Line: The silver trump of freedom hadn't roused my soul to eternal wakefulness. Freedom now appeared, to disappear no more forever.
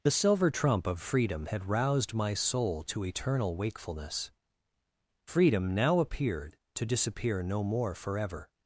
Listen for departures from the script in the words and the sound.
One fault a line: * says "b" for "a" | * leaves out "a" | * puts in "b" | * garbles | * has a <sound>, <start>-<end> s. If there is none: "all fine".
* says "had" for "hadn't"